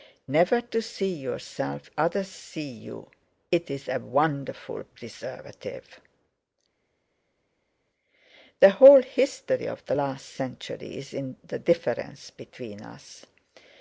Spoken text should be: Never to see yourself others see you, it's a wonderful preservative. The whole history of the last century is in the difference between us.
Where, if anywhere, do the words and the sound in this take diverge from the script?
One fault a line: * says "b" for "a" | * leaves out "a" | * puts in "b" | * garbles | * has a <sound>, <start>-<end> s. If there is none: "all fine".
all fine